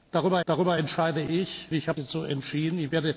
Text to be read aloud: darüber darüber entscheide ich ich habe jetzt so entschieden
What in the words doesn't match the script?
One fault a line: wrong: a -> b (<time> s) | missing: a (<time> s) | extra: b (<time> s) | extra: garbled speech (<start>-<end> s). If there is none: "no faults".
no faults